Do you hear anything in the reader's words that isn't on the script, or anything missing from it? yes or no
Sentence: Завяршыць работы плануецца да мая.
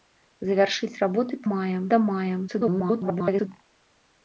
yes